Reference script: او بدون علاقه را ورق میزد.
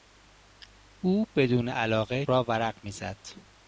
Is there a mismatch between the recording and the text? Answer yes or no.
no